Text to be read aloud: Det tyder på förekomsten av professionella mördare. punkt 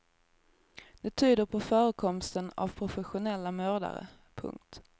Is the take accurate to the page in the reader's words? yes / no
yes